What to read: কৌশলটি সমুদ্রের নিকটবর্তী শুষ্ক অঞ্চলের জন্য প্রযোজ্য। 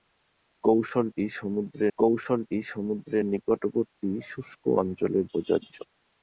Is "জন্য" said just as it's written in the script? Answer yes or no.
no